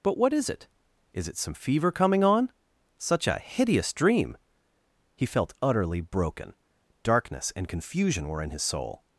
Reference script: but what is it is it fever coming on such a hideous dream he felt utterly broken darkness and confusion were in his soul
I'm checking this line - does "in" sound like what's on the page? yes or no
yes